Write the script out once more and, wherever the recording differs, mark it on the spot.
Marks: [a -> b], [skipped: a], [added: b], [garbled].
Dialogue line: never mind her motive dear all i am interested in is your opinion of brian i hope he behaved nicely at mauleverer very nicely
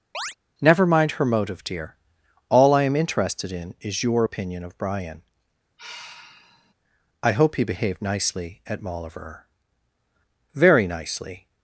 never mind her motive dear all i am interested in is your opinion of brian i hope he behaved nicely at mauleverer very nicely